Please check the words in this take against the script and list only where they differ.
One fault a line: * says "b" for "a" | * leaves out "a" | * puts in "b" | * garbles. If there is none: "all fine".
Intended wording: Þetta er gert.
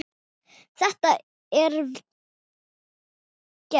all fine